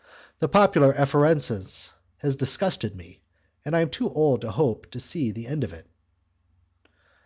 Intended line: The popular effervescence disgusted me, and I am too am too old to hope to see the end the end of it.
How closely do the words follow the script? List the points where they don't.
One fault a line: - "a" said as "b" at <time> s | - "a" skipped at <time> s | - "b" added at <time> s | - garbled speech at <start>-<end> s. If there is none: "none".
- "has" added at 2.2 s
- "am too" skipped at 4.1 s
- "the end" skipped at 5.7 s